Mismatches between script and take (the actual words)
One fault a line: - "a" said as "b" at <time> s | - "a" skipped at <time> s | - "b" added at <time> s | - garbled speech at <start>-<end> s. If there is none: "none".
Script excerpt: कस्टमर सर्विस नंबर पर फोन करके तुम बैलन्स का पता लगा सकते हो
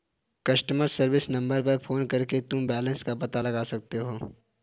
none